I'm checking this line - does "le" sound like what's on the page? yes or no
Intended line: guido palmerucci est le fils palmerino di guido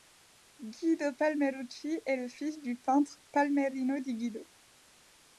yes